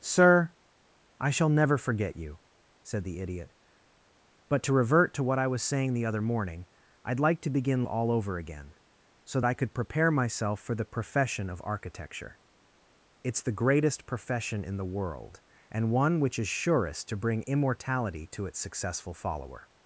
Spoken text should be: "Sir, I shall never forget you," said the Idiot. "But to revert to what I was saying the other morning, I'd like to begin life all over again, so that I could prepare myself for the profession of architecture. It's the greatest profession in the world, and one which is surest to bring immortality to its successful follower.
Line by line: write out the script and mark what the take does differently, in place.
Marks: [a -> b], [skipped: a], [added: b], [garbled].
"Sir, I shall never forget you," said the Idiot. "But to revert to what I was saying the other morning, I'd like to begin [skipped: life] all over again, so [skipped: that] I could prepare myself for the profession of architecture. It's the greatest profession in the world, and one which is surest to bring immortality to its successful follower.